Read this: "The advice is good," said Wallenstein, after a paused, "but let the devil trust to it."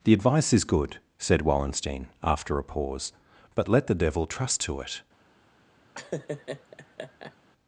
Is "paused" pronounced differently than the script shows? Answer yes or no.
yes